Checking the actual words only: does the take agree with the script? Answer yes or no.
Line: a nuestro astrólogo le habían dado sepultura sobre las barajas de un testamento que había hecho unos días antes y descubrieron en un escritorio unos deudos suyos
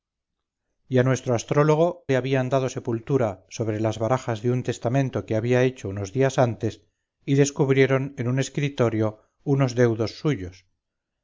yes